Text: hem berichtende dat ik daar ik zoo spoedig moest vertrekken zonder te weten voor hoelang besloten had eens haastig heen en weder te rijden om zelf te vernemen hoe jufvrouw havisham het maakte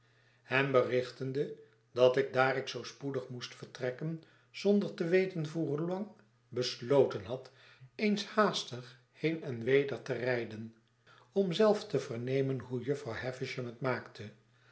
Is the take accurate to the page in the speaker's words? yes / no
yes